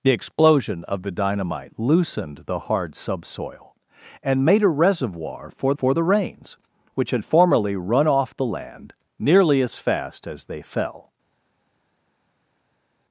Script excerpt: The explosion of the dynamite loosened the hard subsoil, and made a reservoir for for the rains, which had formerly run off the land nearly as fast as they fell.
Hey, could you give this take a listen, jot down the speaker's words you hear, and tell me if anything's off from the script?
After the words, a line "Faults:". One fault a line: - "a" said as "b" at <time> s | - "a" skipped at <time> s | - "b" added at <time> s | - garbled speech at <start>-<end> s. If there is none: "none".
The explosion of the dynamite loosened the hard subsoil, and made a reservoir for for the rains, which had formerly run off the land nearly as fast as they fell.
Faults:
none